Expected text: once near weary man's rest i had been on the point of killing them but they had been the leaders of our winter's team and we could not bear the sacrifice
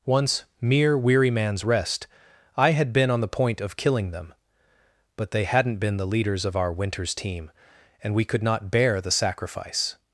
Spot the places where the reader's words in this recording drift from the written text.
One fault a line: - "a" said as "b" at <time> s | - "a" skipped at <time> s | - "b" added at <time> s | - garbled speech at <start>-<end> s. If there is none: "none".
- "near" said as "mere" at 0.6 s
- "had" said as "hadn't" at 5.4 s